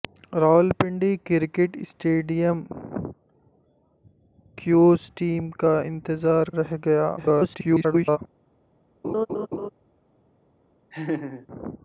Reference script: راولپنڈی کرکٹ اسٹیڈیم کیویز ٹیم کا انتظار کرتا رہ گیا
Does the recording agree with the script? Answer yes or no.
no